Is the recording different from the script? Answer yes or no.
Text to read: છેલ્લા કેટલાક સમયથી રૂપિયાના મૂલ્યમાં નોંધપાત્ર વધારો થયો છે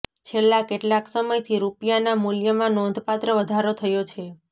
no